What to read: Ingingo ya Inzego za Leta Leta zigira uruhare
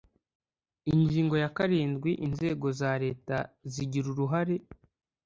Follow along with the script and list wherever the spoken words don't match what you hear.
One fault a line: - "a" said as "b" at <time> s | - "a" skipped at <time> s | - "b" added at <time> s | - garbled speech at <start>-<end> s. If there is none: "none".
- "karindwi" added at 1.6 s
- "Leta" skipped at 3.4 s